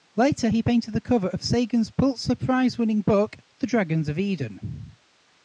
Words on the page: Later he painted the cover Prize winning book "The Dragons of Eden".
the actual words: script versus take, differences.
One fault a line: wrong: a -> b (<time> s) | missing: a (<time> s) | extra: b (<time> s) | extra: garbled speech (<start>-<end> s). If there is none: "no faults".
extra: of Sagan's Pulitzer (1.3 s)